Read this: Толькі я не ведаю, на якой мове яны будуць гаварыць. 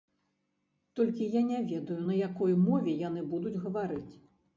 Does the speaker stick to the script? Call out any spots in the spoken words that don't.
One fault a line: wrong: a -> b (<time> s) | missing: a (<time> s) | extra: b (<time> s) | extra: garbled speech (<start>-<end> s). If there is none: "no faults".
no faults